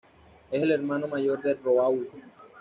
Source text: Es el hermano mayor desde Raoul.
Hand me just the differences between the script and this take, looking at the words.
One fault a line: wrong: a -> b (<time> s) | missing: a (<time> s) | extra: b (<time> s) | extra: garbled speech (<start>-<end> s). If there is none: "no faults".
wrong: desde -> de (1.4 s)